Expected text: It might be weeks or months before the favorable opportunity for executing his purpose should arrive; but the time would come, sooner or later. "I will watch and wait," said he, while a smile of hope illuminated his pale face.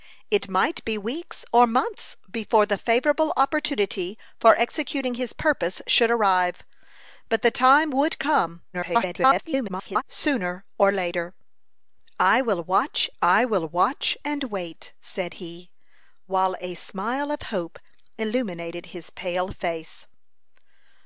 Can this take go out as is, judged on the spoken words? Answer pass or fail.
fail